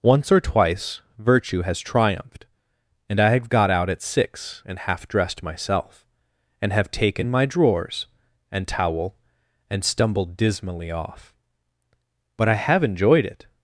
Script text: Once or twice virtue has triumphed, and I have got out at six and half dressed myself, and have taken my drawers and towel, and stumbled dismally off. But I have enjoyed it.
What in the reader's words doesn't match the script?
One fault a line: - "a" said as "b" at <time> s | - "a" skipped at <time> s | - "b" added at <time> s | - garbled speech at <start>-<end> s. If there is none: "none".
none